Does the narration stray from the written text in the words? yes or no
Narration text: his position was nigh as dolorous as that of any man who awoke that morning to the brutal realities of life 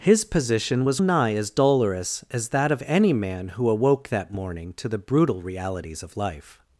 no